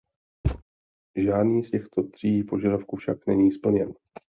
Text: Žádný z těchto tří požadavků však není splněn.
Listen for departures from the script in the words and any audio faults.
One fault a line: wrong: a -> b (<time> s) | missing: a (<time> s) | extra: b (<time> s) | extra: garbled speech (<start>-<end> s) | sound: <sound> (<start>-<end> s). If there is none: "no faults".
sound: thud (0.4-0.6 s)